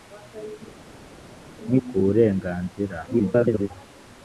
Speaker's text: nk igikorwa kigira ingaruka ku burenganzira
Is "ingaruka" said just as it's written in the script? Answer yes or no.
no